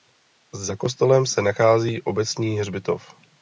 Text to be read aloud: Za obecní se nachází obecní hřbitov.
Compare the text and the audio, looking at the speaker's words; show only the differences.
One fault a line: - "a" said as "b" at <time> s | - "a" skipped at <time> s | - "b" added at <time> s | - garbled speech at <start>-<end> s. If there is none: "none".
- "obecní" said as "kostelem" at 0.8 s